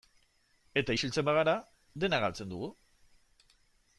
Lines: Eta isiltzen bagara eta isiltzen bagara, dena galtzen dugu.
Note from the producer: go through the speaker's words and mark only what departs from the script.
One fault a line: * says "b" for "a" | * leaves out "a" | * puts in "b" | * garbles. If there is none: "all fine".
* leaves out "eta isiltzen bagara"